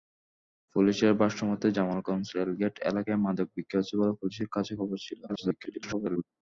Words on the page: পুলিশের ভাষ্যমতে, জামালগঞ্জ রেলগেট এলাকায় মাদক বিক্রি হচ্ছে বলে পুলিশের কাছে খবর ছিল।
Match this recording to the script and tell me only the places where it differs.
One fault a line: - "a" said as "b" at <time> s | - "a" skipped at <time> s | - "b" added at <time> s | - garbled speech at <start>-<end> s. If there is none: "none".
- garbled speech at 5.3-6.2 s